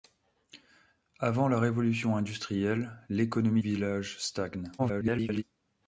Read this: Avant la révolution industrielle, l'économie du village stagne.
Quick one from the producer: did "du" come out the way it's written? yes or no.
no